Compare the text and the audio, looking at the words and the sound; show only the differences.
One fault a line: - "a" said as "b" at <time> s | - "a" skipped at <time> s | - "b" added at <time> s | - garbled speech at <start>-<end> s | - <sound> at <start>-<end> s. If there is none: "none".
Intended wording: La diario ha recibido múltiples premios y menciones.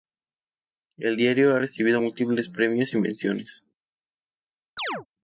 - "La" said as "El" at 1.0 s
- chirp at 4.8-5.1 s